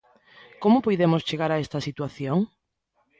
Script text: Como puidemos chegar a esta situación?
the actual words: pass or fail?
pass